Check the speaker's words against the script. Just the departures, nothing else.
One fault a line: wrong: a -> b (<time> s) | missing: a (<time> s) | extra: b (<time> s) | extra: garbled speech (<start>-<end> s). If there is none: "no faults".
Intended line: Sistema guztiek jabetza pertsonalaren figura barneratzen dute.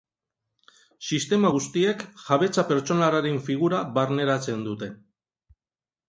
no faults